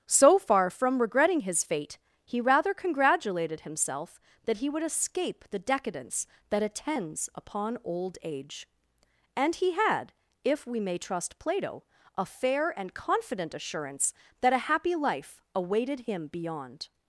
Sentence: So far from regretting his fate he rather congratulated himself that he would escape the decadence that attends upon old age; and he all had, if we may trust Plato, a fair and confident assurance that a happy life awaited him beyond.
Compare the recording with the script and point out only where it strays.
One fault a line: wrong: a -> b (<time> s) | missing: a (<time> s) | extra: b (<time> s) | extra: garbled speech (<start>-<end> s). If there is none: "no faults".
missing: all (9.7 s)